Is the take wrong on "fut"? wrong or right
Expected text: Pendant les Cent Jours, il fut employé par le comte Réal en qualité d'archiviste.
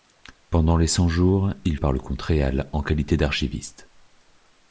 wrong